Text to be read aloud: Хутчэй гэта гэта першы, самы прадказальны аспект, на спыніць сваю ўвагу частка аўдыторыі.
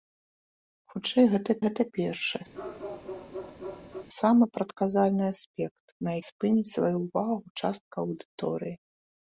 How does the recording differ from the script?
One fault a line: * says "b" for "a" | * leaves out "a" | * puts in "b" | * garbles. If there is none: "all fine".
all fine